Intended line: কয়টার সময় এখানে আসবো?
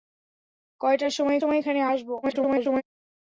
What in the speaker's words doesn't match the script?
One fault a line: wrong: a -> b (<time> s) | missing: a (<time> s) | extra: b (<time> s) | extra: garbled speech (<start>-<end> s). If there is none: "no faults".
extra: সময় (1.4 s)
extra: garbled speech (2.2-2.8 s)